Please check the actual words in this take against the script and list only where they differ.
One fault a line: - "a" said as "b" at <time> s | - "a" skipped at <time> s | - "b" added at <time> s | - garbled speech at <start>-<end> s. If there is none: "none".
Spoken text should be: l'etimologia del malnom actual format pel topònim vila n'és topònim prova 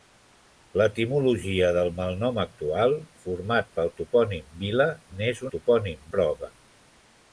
none